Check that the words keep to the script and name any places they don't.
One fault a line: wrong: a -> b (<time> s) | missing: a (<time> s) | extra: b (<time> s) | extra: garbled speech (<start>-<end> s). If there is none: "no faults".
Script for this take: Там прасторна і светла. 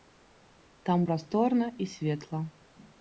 no faults